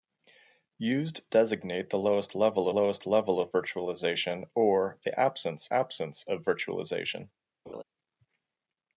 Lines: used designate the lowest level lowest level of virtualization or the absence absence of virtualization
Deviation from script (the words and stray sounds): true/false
true